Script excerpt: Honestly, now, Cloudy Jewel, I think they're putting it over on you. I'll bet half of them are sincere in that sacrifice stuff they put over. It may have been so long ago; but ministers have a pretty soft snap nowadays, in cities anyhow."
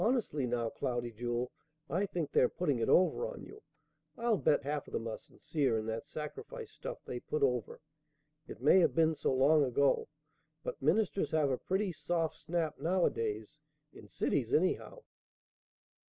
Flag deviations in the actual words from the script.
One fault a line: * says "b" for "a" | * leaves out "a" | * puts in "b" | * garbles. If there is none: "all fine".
all fine